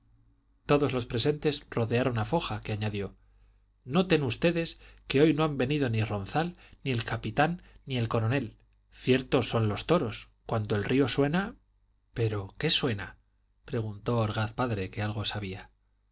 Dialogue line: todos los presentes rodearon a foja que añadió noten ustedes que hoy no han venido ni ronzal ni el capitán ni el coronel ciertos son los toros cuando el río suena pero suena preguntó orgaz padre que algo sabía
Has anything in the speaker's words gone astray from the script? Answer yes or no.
yes